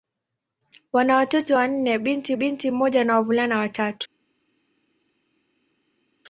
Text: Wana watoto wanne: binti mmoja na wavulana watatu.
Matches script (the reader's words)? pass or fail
fail